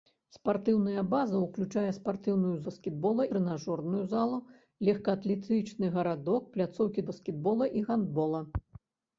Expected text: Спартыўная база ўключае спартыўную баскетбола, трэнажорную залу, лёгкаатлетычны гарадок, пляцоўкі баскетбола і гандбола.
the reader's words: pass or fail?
pass